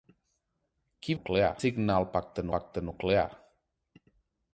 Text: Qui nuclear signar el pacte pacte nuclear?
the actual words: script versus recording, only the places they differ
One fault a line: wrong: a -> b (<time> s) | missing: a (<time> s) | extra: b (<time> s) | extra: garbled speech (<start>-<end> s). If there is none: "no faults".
no faults